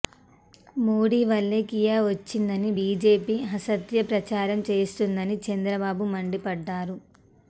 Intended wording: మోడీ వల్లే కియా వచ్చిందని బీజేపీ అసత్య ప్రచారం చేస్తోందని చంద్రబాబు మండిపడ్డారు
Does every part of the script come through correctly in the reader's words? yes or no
yes